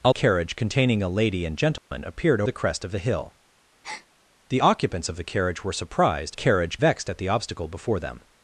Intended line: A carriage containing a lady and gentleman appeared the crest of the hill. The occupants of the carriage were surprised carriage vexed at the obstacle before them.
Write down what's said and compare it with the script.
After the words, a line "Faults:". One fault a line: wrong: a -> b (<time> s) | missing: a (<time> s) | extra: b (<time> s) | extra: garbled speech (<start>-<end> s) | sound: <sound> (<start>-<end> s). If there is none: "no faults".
A carriage containing a lady and gentleman appeared the crest of the hill. The occupants of the carriage were surprised carriage vexed at the obstacle before them.
Faults:
sound: dropout (1.8-1.9 s)
sound: breath (3.8-4.1 s)